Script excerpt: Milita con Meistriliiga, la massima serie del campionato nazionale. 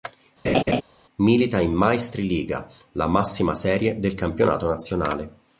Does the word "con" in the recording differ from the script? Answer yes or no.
yes